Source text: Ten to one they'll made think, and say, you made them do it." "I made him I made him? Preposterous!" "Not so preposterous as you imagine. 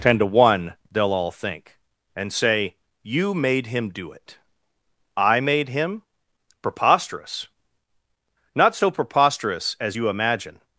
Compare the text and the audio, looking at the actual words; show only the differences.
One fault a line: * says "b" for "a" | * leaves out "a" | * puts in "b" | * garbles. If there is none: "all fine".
* says "all" for "made"
* says "him" for "them"
* leaves out "I made him"